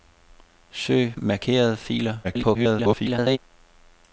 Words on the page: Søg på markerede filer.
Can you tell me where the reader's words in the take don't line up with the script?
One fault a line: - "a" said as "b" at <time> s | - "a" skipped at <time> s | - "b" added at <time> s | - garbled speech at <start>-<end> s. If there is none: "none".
- "på" skipped at 1.1 s
- garbled speech at 2.2-3.4 s